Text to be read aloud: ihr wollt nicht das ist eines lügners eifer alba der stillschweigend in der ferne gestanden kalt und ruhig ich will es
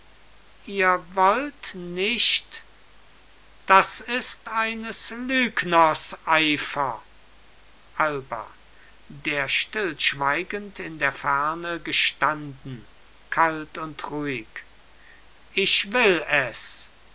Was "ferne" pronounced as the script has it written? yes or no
yes